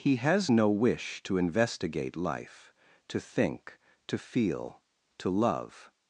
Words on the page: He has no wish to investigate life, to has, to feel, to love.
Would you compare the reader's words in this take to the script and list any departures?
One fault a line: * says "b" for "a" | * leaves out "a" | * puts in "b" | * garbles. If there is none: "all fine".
* says "think" for "has"